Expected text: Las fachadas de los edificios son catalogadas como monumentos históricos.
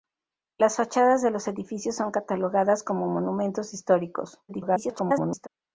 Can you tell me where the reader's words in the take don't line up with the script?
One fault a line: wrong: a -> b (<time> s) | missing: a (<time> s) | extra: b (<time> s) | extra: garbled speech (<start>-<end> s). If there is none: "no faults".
extra: garbled speech (4.5-5.5 s)